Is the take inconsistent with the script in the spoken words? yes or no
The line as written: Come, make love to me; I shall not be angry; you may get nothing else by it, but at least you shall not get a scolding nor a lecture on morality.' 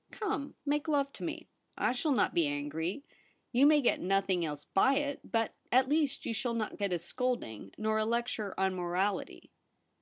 no